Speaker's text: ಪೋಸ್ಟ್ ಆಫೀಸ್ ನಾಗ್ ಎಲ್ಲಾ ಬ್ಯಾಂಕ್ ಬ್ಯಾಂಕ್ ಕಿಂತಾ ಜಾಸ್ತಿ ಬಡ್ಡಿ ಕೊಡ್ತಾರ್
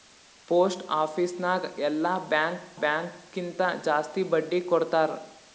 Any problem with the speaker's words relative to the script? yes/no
no